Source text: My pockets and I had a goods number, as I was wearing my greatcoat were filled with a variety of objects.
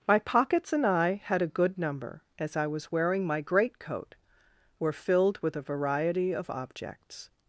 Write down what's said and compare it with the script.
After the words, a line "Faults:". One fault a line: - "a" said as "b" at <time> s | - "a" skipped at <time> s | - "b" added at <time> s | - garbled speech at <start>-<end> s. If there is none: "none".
My pockets and I had a good number, as I was wearing my greatcoat were filled with a variety of objects.
Faults:
- "goods" said as "good" at 1.5 s